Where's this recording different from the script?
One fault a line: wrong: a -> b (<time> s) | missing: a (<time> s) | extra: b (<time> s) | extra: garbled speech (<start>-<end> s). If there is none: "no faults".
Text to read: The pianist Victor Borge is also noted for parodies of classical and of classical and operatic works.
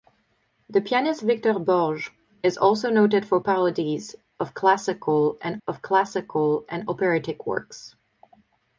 no faults